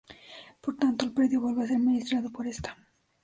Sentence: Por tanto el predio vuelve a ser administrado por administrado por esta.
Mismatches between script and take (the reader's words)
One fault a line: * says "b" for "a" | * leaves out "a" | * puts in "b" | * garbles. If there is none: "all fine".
* leaves out "administrado por"